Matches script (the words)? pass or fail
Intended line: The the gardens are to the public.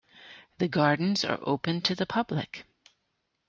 fail